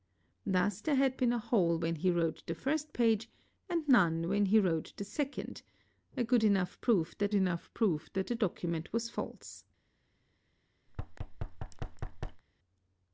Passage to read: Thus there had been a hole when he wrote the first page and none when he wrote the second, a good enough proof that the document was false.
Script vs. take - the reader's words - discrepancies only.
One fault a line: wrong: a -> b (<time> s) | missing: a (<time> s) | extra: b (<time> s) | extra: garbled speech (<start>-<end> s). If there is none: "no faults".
extra: enough proof that (7.3 s)